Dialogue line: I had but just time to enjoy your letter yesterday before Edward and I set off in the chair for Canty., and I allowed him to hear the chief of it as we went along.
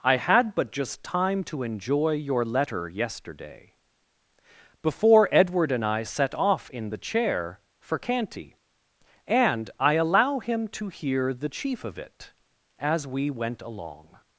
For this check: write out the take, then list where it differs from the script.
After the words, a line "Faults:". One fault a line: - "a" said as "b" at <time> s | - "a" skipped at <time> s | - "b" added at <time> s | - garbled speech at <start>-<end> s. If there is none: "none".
I had but just time to enjoy your letter yesterday before Edward and I set off in the chair for Canty., and I allow him to hear the chief of it as we went along.
Faults:
- "allowed" said as "allow" at 9.9 s